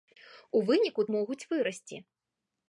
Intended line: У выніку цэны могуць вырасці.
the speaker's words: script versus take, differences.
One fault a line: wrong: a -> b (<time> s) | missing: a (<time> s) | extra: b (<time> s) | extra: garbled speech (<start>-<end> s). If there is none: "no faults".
missing: цэны (1.1 s)